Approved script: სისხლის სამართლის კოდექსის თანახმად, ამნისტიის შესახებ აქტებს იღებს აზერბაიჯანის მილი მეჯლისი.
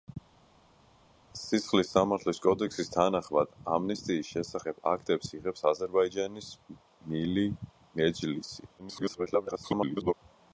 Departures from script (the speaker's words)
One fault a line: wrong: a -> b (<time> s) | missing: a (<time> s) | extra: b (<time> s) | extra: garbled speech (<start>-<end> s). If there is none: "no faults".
extra: garbled speech (8.8-10.1 s)